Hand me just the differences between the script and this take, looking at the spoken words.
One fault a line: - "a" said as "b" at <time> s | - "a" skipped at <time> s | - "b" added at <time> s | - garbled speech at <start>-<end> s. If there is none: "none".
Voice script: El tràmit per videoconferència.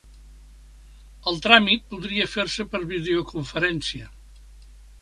- "podria fer se" added at 1.9 s